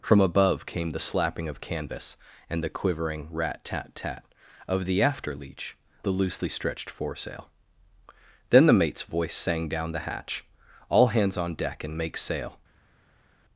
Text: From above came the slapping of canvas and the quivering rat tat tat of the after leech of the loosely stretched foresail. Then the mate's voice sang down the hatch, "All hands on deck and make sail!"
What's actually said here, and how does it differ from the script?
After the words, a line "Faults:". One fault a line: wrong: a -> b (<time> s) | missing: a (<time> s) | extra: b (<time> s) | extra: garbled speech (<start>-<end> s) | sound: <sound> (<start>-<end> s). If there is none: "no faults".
From above came the slapping of canvas and the quivering rat tat tat of the after leech the loosely stretched foresail. Then the mate's voice sang down the hatch, "All hands on deck and make sail!"
Faults:
missing: of (5.8 s)